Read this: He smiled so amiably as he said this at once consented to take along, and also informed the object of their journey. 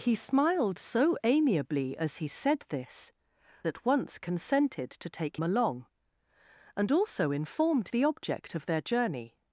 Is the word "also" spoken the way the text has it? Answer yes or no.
yes